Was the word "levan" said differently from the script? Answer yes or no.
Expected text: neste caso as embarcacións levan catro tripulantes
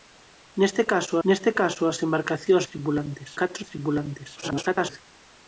yes